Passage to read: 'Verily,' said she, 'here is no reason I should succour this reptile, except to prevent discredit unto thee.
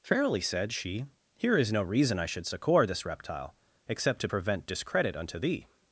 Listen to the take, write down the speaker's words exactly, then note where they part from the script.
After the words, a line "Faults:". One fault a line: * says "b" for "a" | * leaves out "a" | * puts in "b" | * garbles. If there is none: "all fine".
'Verily,' said she, 'here is no reason I should succour this reptile, except to prevent discredit unto thee.
Faults:
all fine